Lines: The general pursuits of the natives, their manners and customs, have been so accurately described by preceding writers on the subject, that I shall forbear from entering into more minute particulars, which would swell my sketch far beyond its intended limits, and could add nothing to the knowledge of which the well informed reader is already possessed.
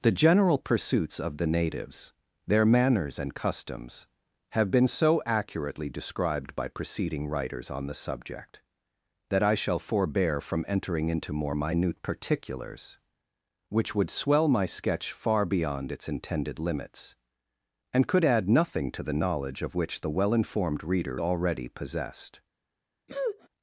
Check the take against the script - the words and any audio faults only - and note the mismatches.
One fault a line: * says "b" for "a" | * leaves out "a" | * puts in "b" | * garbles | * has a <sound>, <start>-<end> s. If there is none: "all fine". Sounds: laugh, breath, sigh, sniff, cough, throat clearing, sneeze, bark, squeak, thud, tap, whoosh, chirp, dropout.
* leaves out "is"
* has a sniff, 23.1-23.5 s